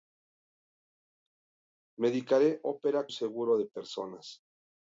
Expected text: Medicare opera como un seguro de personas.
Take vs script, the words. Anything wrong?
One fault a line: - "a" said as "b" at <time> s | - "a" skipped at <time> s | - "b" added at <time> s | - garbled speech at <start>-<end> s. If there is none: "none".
- "como un" skipped at 3.1 s